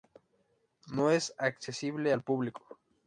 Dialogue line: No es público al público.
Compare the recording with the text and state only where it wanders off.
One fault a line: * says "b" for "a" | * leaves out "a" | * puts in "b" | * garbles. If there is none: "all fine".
* says "accesible" for "público"